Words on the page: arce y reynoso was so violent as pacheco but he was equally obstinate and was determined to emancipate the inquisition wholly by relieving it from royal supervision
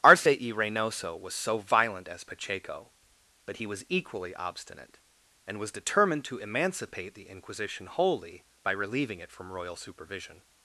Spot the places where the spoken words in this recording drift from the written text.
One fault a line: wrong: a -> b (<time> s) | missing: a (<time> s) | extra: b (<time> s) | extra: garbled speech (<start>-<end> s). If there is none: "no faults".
no faults